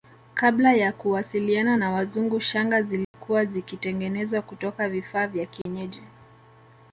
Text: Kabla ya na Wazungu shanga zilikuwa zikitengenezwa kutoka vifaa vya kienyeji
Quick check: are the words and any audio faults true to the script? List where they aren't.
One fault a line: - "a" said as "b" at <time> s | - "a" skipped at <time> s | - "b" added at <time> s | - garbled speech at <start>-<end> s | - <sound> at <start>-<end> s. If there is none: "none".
- "kuwasiliana" added at 0.9 s
- dropout at 3.0-3.1 s
- dropout at 5.6-5.7 s